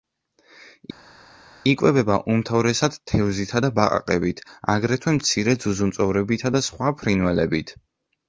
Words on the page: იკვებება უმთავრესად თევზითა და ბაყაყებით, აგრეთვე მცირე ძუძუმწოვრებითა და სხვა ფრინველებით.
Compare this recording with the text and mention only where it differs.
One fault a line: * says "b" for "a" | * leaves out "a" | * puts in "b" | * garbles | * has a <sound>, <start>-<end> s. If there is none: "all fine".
all fine